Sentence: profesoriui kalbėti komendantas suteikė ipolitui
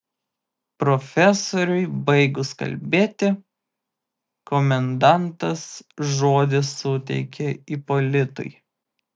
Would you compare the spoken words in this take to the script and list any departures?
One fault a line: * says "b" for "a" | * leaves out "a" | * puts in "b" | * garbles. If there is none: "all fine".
* puts in "baigus"
* puts in "žodį"